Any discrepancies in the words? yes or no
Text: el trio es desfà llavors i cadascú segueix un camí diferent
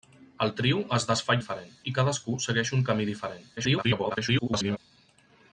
yes